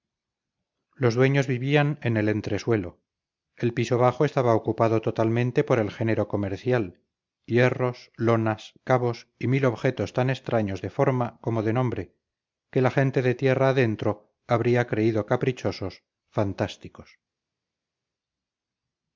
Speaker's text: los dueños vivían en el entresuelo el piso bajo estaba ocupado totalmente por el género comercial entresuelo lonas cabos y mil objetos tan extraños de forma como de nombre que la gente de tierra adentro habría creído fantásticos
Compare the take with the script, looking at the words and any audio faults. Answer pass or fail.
fail